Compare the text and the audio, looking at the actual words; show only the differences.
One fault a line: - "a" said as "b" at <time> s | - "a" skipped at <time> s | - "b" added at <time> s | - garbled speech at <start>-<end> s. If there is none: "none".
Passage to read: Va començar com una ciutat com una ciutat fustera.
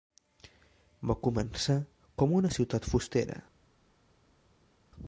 - "com una ciutat" skipped at 2.9 s